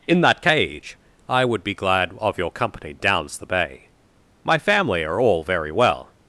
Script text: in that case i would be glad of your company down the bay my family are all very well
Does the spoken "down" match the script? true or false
false